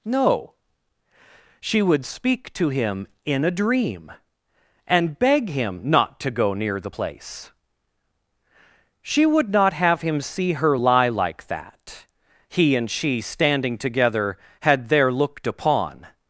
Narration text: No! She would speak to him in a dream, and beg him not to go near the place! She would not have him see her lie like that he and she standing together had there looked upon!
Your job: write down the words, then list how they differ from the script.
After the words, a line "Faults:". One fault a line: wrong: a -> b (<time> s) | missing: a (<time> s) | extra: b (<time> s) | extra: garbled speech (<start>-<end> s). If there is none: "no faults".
No! She would speak to him in a dream, and beg him not to go near the place! She would not have him see her lie like that he and she standing together had there looked upon!
Faults:
no faults